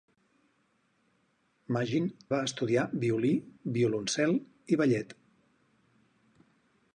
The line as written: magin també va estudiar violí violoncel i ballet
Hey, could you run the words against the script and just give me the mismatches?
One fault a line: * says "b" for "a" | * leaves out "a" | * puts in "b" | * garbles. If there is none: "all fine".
* leaves out "també"